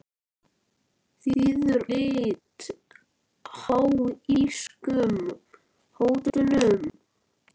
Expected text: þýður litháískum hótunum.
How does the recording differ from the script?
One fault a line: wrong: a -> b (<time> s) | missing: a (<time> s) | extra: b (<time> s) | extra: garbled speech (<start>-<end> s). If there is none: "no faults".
no faults